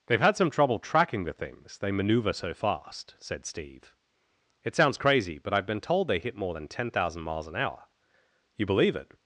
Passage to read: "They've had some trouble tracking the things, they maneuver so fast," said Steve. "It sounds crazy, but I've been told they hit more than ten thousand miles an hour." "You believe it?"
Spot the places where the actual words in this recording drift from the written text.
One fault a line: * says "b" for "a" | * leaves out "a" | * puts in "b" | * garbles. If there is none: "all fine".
all fine